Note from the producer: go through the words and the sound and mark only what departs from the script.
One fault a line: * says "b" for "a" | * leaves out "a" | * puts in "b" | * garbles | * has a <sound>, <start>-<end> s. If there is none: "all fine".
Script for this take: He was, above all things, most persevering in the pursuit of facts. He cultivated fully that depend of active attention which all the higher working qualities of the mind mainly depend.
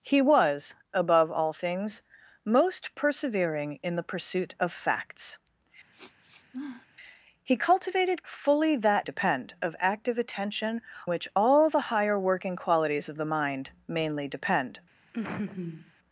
* has a sniff, 5.9-6.9 s
* has a laugh, 15.1-15.9 s